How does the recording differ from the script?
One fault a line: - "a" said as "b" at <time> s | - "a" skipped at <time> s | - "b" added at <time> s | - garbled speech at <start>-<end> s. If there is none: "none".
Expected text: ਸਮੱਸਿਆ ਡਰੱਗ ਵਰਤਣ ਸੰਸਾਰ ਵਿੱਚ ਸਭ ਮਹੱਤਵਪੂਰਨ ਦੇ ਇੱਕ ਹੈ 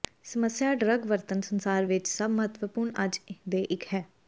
- "ਅੱਜ" added at 3.0 s